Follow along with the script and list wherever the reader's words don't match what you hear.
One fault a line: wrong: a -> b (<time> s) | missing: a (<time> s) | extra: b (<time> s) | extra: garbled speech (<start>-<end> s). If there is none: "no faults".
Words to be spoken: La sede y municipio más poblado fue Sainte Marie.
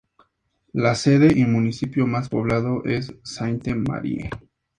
wrong: fue -> es (2.8 s)